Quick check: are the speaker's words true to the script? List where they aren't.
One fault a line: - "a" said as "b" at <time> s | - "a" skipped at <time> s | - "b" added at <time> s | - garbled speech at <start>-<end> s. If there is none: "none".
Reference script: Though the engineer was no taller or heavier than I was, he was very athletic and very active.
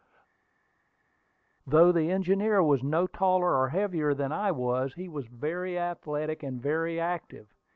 none